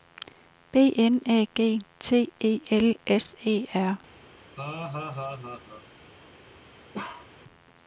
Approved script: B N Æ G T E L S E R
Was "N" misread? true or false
false